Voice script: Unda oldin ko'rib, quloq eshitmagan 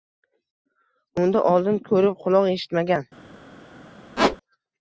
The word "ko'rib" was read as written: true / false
true